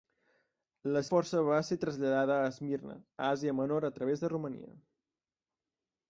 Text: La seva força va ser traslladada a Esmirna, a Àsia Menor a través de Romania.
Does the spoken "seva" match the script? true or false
false